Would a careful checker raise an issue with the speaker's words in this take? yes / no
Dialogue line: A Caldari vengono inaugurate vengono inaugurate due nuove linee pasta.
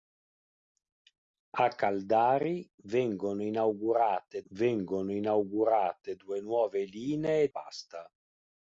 no